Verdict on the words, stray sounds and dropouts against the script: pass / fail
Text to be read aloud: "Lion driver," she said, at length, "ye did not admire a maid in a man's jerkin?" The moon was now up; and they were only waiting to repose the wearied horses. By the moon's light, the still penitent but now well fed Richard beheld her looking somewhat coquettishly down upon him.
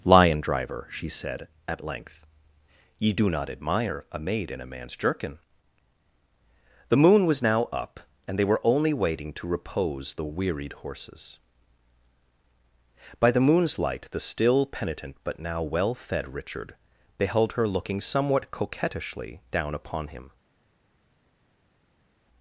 fail